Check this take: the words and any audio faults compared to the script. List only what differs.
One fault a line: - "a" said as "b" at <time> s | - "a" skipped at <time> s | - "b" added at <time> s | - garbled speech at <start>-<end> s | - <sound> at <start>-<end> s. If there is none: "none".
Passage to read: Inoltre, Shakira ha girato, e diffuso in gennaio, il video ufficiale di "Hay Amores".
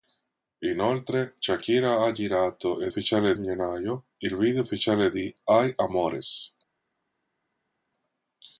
- "diffuso" said as "ufficiale" at 2.9 s